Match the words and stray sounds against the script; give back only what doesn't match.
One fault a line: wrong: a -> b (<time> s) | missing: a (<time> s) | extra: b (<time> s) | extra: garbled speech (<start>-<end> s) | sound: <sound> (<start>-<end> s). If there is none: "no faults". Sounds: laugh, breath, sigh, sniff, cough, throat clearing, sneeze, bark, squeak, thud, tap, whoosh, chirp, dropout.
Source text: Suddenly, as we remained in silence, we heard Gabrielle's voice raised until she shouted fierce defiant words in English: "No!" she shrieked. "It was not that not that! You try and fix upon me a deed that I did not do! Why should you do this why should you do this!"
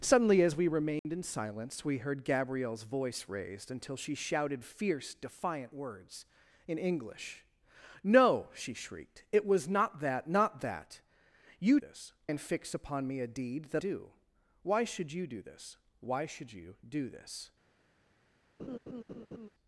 sound: dropout (1.0-1.0 s)
wrong: try -> this (11.8 s)
missing: I did not (13.8 s)
sound: laugh (18.6-19.5 s)